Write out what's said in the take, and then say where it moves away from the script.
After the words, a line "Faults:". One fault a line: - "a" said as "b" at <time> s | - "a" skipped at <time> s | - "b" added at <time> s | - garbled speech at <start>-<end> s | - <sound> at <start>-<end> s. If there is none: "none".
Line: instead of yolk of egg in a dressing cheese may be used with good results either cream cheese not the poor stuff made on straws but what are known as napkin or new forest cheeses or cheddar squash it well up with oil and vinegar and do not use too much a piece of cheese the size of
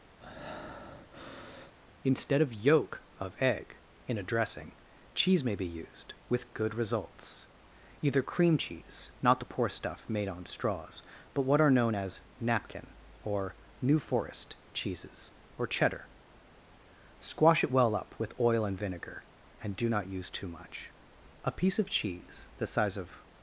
instead of yolk of egg in a dressing cheese may be used with good results either cream cheese not the poor stuff made on straws but what are known as napkin or new forest cheeses or cheddar squash it well up with oil and vinegar and do not use too much a piece of cheese the size of
Faults:
- breath at 0.2-1.8 s